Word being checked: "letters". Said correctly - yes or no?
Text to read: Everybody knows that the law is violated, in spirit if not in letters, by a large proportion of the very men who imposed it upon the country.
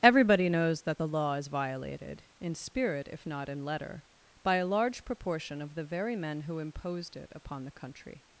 no